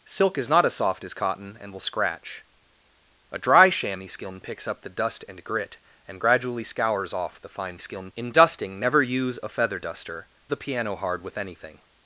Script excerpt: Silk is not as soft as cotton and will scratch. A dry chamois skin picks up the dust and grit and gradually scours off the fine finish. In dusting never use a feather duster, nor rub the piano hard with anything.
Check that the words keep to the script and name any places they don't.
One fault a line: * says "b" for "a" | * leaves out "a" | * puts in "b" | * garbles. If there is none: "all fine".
* says "skin" for "finish"
* leaves out "nor rub"